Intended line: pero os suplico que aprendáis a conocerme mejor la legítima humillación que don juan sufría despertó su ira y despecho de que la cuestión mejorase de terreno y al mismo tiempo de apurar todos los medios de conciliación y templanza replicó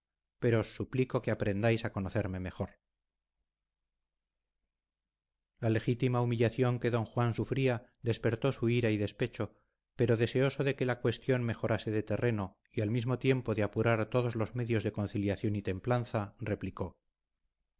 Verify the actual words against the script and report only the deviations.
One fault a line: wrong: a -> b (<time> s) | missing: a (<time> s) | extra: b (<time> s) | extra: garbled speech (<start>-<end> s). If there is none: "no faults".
extra: pero deseoso (10.0 s)